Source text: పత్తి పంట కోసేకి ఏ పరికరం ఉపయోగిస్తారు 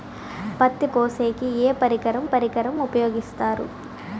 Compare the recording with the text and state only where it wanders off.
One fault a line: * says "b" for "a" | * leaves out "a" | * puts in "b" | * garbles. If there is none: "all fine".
* leaves out "పంట"
* puts in "పరికరం"